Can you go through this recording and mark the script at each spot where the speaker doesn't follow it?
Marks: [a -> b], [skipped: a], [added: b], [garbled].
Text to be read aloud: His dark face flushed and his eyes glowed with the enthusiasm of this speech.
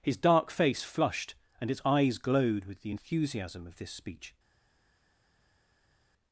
His dark face flushed and [his -> its] eyes glowed with the enthusiasm of this speech.